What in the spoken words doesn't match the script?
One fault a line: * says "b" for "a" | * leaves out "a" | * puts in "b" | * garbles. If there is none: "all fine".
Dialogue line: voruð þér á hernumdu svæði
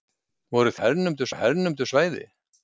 * says "hernumdu" for "þér"